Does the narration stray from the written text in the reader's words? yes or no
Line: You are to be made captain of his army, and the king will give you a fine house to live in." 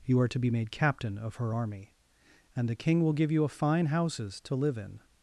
yes